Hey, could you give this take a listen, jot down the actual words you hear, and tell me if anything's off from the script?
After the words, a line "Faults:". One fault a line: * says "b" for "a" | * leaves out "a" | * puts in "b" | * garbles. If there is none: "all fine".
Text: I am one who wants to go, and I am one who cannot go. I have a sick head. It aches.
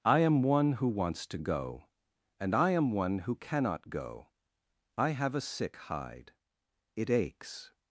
I am one who wants to go, and I am one who cannot go. I have a sick hide. It aches.
Faults:
* says "hide" for "head"